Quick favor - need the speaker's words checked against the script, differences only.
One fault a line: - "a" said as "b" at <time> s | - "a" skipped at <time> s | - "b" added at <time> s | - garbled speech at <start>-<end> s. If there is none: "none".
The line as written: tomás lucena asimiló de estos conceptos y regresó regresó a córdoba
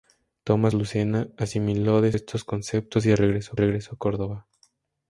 none